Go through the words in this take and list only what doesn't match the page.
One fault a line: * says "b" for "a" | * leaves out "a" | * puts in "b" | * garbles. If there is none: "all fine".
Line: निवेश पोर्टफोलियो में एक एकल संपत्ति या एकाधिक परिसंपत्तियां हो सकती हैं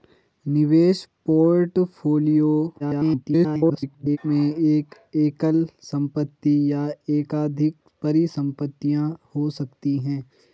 * garbles